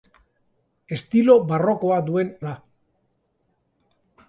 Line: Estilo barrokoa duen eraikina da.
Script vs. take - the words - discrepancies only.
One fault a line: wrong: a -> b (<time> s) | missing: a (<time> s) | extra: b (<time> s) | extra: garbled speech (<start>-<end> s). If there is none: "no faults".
missing: eraikina (2.3 s)